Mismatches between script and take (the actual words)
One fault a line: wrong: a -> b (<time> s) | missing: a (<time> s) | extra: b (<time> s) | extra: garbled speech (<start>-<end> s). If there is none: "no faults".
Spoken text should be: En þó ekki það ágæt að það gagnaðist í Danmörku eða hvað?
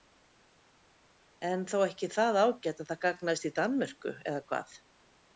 no faults